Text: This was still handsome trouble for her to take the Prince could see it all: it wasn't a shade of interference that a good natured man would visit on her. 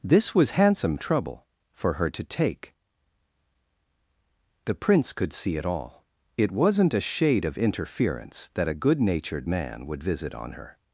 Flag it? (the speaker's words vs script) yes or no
yes